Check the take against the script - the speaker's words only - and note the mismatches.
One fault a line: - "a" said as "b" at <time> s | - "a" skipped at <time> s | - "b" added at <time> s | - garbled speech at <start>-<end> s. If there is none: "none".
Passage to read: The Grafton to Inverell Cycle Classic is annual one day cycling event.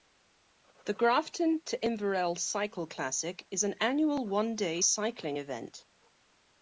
- "an" added at 3.6 s